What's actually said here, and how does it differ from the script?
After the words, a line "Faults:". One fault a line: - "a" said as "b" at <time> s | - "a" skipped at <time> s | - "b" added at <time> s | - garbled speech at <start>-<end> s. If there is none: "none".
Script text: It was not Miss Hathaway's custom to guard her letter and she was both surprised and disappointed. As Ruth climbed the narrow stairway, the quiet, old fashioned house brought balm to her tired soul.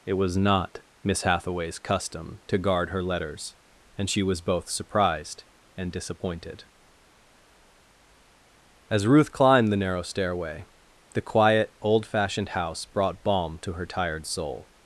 It was not Miss Hathaway's custom to guard her letters and she was both surprised and disappointed. As Ruth climbed the narrow stairway, the quiet, old fashioned house brought balm to her tired soul.
Faults:
- "letter" said as "letters" at 3.0 s